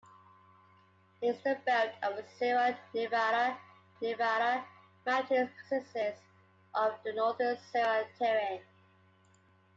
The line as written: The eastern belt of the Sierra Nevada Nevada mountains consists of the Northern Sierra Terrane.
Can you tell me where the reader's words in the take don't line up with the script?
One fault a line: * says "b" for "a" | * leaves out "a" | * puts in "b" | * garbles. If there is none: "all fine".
all fine